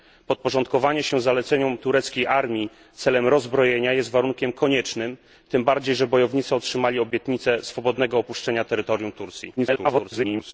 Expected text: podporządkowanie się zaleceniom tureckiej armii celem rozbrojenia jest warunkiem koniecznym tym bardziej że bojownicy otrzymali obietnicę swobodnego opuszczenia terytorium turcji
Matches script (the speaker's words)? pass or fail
fail